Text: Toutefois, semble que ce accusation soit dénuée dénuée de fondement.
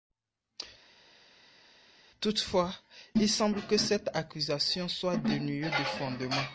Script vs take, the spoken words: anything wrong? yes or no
yes